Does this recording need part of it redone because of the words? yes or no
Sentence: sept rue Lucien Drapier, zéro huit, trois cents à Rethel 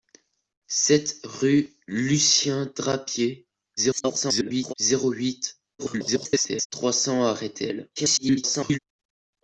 yes